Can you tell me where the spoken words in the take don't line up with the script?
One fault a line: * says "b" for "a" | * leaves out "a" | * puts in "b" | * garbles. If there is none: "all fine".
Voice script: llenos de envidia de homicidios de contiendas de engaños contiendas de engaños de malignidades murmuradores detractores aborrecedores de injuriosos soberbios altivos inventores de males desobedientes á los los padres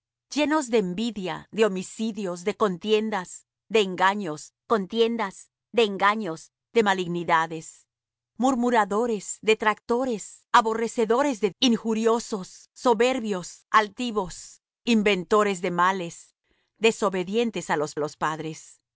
all fine